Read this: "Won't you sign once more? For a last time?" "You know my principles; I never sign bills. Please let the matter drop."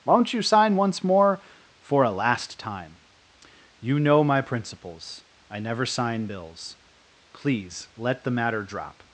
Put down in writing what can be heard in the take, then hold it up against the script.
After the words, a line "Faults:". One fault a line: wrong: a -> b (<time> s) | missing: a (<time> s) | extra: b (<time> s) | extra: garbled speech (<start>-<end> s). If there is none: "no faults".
"Won't you sign once more? For a last time?" "You know my principles; I never sign bills. Please let the matter drop."
Faults:
no faults